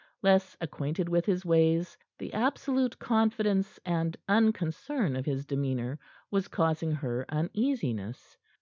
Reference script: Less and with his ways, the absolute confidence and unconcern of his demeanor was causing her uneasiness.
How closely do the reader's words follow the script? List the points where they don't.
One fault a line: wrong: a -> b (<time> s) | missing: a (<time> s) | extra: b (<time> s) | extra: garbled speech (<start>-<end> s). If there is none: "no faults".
wrong: and -> acquainted (0.6 s)